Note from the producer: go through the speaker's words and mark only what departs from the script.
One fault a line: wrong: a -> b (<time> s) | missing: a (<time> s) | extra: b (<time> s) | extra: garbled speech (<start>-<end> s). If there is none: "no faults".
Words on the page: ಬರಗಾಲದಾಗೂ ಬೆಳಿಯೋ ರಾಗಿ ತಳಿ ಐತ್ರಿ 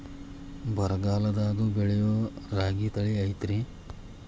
no faults